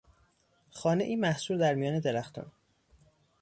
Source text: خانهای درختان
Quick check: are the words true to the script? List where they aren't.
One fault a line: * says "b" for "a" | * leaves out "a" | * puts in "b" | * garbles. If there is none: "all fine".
* puts in "محصور در میان"